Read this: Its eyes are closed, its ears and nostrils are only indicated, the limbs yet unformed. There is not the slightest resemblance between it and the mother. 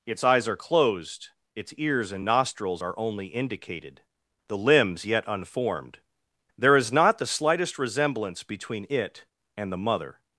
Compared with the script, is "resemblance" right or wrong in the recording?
right